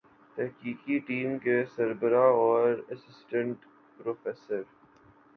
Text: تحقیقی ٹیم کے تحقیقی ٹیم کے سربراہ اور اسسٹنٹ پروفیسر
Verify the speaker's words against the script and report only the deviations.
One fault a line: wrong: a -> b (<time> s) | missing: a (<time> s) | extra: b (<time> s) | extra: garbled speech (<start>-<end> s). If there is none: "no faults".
missing: تحقیقی ٹیم کے (1.6 s)